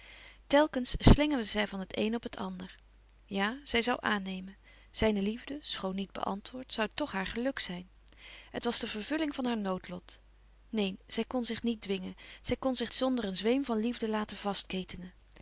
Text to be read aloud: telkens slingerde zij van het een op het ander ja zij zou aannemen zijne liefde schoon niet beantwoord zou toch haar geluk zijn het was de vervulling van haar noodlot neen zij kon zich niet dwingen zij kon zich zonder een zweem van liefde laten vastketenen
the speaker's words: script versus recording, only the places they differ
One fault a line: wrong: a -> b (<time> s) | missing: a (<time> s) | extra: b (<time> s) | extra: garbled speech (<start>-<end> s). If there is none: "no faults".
no faults